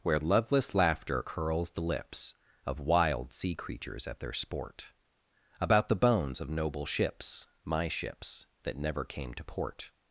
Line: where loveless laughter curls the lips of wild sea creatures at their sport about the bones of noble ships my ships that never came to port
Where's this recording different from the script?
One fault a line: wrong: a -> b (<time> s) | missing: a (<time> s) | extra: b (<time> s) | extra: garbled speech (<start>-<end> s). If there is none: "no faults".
no faults